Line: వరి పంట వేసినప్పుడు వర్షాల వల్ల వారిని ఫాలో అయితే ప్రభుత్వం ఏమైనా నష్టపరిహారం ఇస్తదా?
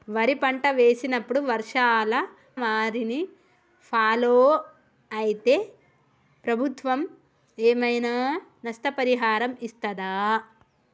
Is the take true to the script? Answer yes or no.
no